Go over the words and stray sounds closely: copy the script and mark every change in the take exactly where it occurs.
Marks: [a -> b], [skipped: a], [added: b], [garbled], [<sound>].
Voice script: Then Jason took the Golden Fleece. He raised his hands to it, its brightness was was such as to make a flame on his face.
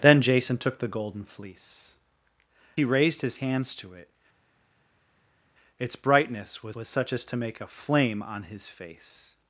Then Jason took the Golden Fleece. He raised his hands to it, its brightness was was such as to make a flame on his face.